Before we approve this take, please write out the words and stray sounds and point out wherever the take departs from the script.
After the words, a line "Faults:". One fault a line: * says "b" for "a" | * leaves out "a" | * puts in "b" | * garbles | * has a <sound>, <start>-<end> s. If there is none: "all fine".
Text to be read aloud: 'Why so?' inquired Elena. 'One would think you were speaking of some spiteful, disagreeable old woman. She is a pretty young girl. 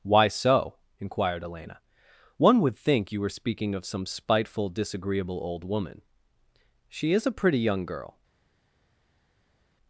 'Why so?' inquired Elena. 'One would think you were speaking of some spiteful, disagreeable old woman. She is a pretty young girl.
Faults:
all fine